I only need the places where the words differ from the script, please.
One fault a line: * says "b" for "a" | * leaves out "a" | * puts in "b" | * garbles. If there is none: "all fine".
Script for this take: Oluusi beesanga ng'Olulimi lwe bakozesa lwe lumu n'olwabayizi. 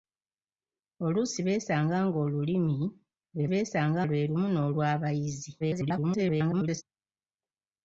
* says "beesanga" for "bakozesa"
* garbles